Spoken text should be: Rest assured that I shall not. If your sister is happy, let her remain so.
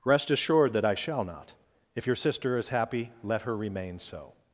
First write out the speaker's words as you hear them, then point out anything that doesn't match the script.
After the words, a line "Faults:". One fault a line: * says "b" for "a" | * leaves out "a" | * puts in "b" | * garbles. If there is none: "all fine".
Rest assured that I shall not. If your sister is happy, let her remain so.
Faults:
all fine